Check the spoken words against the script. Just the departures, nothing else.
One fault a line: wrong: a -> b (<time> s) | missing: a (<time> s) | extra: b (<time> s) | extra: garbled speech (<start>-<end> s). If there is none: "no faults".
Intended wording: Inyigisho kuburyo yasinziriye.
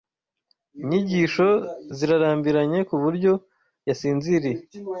extra: zirarambiranye (2.0 s)